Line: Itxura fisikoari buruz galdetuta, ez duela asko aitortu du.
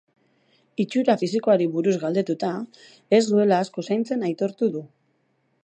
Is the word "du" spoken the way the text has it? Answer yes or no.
yes